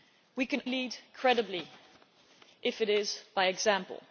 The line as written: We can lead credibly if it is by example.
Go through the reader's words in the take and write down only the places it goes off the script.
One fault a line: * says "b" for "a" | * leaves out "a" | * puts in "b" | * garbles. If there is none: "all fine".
all fine